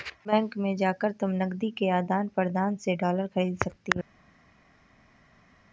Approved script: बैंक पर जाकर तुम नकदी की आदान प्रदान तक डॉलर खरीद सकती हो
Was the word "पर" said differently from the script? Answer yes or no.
yes